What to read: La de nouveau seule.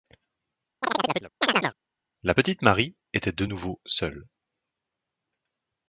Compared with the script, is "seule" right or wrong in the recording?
right